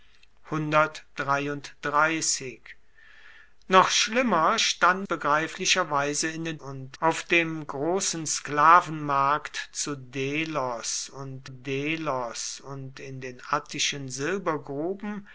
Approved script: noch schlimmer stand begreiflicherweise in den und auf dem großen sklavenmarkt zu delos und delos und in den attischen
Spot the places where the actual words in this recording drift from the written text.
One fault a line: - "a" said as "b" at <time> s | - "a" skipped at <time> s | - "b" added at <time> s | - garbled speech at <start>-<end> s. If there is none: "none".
none